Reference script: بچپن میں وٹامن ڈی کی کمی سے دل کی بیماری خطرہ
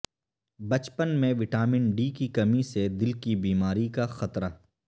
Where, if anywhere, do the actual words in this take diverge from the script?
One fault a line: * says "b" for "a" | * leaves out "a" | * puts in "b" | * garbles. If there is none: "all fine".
* puts in "کا"